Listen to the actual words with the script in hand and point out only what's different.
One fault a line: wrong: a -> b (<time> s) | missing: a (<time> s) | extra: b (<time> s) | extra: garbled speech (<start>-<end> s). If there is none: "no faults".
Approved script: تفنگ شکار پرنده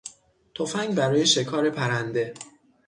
extra: برای (0.9 s)